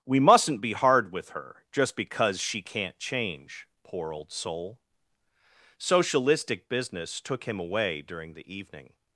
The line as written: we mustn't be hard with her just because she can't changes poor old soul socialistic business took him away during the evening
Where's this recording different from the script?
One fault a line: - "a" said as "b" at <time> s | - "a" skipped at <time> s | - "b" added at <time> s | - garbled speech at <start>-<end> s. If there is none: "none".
- "changes" said as "change" at 3.0 s